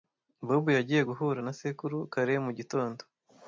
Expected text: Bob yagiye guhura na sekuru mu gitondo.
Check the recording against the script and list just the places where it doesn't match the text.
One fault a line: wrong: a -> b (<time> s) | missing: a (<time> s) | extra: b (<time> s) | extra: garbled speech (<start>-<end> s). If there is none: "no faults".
extra: kare (2.1 s)